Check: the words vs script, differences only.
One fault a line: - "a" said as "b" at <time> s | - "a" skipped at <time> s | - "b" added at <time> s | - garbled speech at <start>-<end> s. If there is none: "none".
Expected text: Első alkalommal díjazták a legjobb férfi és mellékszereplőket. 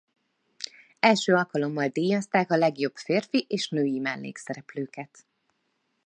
- "női" added at 3.7 s